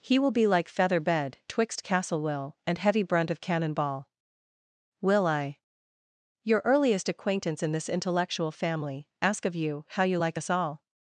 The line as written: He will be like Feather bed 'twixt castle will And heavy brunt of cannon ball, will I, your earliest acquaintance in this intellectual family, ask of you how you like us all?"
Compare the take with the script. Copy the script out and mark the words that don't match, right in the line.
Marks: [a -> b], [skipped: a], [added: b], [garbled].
He will be like Feather bed 'twixt castle will And heavy brunt of cannon ball, will I, your earliest acquaintance in this intellectual family, ask of you how you like us all?"